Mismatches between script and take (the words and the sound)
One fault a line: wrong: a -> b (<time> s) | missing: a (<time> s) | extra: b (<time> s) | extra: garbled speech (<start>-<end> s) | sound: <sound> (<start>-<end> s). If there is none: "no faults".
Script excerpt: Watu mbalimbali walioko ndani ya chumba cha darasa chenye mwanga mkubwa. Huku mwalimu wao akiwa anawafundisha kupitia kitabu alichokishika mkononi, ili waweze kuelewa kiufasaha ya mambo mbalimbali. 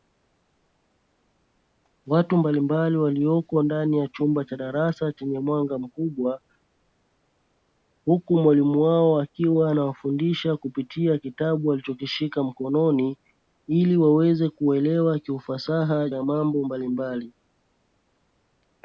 no faults